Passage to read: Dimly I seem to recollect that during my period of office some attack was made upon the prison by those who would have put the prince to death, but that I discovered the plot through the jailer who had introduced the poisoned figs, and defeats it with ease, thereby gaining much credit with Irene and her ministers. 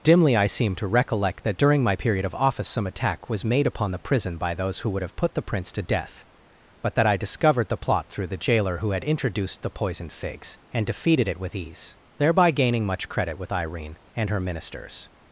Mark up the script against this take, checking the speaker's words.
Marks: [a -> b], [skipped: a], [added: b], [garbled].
Dimly I seem to recollect that during my period of office some attack was made upon the prison by those who would have put the prince to death, but that I discovered the plot through the jailer who had introduced the poisoned figs, and [defeats -> defeated] it with ease, thereby gaining much credit with Irene and her ministers.